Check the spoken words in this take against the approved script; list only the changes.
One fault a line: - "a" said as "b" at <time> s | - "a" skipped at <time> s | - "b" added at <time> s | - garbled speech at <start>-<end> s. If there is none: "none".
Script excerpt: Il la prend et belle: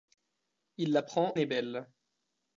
none